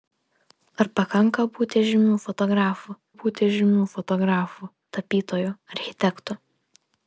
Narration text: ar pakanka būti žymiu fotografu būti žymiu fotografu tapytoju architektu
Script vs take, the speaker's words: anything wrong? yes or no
no